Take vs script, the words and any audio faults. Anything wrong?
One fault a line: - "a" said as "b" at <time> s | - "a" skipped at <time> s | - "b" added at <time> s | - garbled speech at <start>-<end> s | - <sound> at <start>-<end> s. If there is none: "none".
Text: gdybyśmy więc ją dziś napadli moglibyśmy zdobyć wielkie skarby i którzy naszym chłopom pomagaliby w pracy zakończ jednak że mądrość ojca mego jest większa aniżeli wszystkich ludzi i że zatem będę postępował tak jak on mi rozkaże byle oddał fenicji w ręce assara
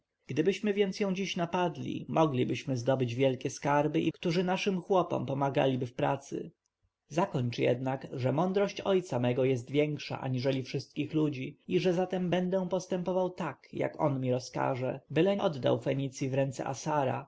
none